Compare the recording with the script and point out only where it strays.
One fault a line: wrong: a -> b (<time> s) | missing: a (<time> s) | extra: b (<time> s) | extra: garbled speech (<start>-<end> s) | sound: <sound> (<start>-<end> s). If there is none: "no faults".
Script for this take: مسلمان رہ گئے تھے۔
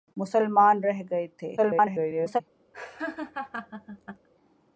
extra: garbled speech (1.6-2.4 s)
sound: laugh (2.7-4.3 s)